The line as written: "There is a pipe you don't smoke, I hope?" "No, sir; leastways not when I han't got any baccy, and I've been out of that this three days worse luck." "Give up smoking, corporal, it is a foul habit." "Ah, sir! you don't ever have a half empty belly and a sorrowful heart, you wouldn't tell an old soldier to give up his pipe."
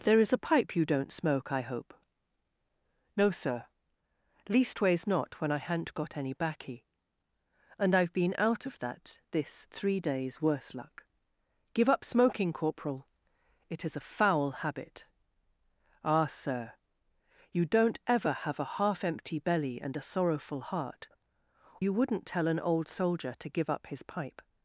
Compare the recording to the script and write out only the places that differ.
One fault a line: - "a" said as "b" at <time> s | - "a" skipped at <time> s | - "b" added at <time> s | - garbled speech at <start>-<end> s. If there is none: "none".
none